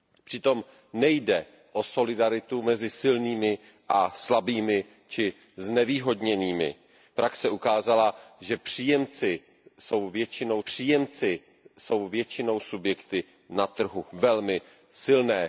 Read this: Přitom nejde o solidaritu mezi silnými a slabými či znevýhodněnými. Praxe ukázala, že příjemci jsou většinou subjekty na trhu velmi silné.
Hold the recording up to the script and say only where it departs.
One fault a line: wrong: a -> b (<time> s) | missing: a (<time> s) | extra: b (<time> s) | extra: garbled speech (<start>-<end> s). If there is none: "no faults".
extra: příjemci jsou většinou (10.6 s)